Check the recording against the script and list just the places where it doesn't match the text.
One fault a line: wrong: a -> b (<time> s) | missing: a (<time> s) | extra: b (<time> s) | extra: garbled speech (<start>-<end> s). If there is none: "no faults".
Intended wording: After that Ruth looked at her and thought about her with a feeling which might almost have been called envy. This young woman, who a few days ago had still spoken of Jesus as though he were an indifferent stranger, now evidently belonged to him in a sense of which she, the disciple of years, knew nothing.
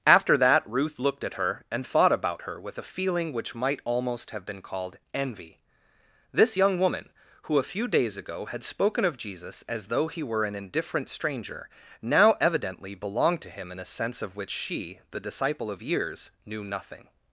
missing: still (8.6 s)